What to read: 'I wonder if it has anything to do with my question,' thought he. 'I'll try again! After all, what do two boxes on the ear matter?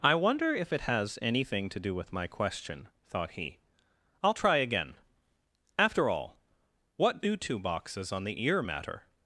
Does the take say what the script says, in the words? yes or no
yes